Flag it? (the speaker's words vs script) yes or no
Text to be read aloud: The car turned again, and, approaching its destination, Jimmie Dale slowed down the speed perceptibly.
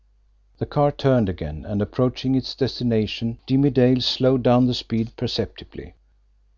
no